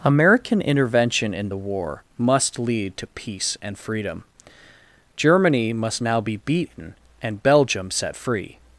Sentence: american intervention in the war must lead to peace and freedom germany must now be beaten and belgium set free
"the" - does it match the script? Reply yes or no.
yes